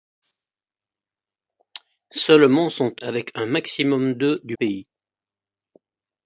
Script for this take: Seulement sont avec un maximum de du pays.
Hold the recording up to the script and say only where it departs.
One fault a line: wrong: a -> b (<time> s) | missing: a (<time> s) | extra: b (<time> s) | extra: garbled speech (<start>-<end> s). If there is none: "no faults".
no faults